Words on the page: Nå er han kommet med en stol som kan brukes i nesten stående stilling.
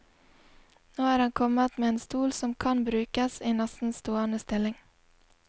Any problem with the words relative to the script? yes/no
no